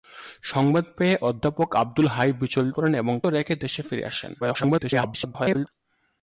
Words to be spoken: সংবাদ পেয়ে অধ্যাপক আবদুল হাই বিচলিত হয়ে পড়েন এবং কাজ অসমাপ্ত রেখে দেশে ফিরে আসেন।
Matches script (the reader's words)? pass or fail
fail